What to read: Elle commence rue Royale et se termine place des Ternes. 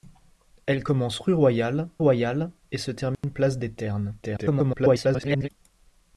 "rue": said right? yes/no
yes